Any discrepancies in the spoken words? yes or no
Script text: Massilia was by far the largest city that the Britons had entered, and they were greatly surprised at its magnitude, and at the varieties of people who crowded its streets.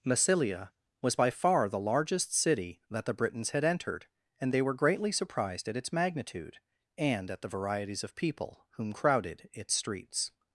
yes